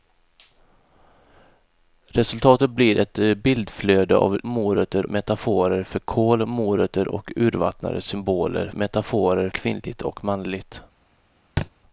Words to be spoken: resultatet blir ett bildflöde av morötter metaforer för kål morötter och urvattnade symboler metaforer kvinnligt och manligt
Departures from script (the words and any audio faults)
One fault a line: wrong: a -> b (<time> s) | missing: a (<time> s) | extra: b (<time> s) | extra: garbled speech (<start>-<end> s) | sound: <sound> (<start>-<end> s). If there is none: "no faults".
sound: thud (11.6-11.7 s)